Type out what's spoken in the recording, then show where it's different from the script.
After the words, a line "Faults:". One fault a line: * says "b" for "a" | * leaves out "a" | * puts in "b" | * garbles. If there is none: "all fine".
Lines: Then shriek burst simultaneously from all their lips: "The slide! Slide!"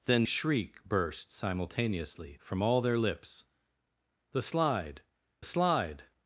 Then shriek burst simultaneously from all their lips: "The slide! Slide!"
Faults:
all fine